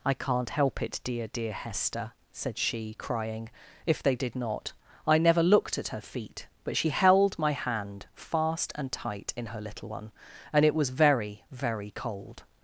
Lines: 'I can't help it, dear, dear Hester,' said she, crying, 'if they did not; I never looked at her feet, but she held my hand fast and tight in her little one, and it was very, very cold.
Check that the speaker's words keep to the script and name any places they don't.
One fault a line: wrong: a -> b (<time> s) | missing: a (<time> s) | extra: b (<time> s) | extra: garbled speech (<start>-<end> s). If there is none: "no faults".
no faults